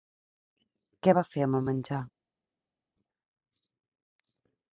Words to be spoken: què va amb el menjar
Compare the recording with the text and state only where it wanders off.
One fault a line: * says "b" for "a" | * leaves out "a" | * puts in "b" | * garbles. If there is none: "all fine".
* puts in "fer"